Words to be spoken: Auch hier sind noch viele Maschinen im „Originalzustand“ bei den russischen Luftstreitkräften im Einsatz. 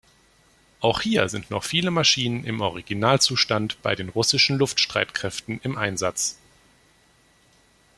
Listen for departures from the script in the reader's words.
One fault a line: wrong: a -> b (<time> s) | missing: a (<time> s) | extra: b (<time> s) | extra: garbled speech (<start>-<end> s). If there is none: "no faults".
no faults